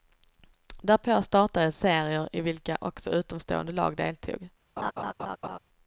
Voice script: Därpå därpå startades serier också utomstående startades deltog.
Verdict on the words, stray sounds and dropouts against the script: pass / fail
fail